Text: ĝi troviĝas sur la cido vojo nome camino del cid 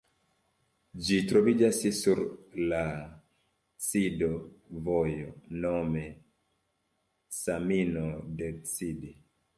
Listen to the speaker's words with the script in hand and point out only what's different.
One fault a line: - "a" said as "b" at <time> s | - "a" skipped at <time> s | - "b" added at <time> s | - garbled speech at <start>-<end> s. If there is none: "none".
none